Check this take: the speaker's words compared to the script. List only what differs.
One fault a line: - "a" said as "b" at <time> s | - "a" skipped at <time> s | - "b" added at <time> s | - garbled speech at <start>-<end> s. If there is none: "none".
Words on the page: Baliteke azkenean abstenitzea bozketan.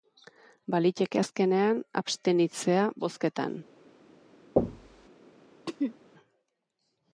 none